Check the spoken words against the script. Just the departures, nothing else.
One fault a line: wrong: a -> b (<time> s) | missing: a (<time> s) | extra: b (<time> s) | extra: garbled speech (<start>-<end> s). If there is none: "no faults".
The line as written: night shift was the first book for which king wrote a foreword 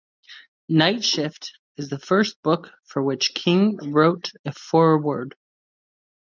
wrong: was -> is (1.8 s)